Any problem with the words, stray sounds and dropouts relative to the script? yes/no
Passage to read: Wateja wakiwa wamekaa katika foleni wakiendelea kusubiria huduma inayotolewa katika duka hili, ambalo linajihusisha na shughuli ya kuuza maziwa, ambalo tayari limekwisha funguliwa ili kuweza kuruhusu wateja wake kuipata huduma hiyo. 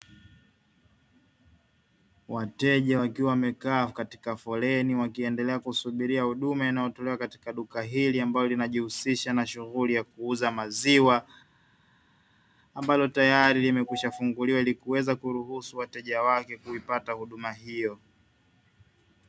no